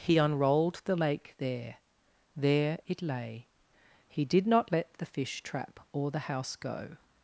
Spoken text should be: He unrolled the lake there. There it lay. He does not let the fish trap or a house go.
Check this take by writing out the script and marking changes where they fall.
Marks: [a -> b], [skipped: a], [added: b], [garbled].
He unrolled the lake there. There it lay. He [does -> did] not let the fish trap or [a -> the] house go.